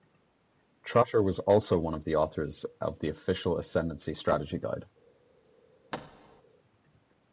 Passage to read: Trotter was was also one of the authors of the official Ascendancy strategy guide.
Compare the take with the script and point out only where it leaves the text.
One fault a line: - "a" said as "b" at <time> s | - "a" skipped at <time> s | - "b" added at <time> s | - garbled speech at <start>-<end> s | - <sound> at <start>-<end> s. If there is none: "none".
- "was" skipped at 1.4 s
- thud at 5.9-6.4 s